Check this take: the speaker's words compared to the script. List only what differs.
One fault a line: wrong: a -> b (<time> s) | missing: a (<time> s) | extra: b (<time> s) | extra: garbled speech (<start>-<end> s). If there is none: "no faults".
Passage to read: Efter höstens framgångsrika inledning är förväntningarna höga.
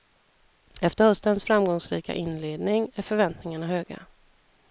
no faults